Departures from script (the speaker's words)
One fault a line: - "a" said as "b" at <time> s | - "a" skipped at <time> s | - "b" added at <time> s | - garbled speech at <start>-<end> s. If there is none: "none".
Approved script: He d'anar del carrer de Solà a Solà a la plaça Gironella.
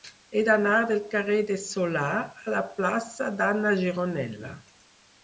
- "Solà a" skipped at 2.5 s
- "d'Anna" added at 3.4 s